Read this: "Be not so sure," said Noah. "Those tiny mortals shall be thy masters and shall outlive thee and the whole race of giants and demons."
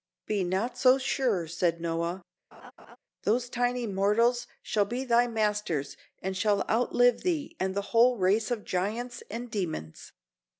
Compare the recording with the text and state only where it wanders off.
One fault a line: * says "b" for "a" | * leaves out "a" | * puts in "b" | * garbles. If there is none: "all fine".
all fine